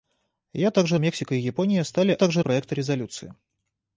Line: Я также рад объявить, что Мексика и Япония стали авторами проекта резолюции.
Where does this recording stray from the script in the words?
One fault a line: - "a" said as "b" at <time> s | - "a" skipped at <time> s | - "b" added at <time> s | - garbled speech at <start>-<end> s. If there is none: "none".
- "рад объявить что" skipped at 1.0 s
- "авторами" said as "также" at 2.2 s